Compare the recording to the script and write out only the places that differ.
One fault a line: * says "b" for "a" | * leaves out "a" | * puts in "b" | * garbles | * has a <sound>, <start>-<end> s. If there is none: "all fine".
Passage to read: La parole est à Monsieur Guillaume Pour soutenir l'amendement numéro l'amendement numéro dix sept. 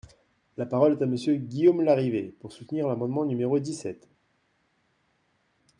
* puts in "Larrivé"
* leaves out "l'amendement numéro"